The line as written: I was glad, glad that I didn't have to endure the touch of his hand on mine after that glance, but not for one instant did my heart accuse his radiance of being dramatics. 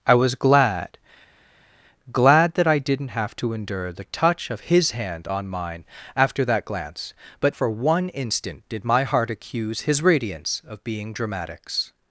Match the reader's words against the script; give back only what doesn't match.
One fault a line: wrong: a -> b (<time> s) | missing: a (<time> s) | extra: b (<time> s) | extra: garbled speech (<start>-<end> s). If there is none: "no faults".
missing: not (7.5 s)